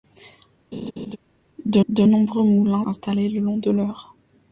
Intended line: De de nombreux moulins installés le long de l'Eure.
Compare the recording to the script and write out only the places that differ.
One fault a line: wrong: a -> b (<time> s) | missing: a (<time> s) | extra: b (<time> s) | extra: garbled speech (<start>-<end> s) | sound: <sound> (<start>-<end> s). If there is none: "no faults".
sound: laugh (0.7-1.2 s)